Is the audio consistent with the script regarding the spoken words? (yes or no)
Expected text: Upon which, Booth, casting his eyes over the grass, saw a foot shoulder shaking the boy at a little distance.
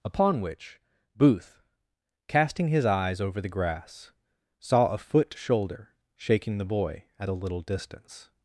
yes